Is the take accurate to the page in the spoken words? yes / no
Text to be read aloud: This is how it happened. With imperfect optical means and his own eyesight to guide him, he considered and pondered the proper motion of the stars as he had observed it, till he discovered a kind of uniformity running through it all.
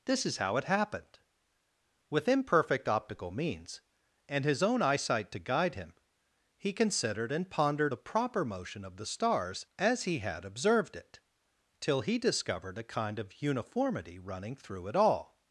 yes